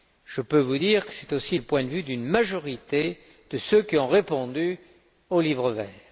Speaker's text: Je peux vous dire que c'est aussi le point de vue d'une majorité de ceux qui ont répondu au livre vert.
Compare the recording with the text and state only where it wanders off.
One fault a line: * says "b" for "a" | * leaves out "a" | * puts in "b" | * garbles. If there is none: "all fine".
all fine